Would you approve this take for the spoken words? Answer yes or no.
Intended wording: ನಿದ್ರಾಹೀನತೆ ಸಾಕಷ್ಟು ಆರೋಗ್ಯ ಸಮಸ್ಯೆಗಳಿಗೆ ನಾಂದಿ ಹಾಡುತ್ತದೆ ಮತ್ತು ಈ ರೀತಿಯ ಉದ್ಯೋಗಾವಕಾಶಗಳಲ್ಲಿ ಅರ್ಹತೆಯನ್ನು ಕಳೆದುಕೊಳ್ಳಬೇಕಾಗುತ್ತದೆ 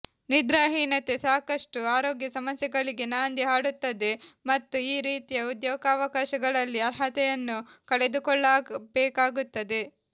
yes